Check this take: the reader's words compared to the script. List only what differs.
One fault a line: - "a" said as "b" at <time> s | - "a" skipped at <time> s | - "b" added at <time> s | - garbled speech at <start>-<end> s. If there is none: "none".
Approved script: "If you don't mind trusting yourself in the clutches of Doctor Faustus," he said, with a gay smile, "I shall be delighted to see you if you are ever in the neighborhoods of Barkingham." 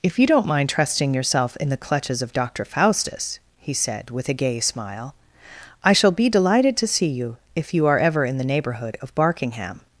- "neighborhoods" said as "neighborhood" at 8.4 s